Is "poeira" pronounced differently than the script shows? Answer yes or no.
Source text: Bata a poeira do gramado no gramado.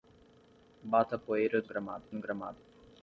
no